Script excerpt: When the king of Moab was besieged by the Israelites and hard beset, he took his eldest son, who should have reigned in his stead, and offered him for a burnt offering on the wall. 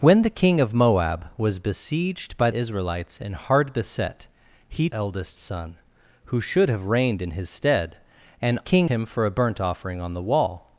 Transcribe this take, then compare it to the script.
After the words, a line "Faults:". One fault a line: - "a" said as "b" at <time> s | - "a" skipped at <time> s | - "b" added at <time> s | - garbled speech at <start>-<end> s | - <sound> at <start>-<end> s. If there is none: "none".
When the king of Moab was besieged by Israelites and hard beset, he eldest son, who should have reigned in his stead, and king him for a burnt offering on the wall.
Faults:
- "the" skipped at 2.5 s
- "took his" skipped at 4.9 s
- "offered" said as "king" at 8.6 s